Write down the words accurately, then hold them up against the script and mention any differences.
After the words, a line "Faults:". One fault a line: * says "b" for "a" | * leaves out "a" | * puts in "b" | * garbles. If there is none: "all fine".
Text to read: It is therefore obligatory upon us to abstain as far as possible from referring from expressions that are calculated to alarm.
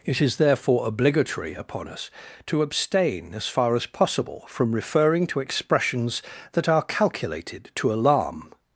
It is therefore obligatory upon us to abstain as far as possible from referring to expressions that are calculated to alarm.
Faults:
* says "to" for "from"